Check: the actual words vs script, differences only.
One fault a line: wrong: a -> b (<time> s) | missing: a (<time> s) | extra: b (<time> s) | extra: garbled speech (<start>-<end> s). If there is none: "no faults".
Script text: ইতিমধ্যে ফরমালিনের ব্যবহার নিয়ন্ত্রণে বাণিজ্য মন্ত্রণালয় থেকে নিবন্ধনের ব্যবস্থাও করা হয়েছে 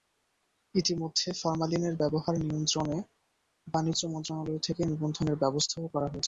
no faults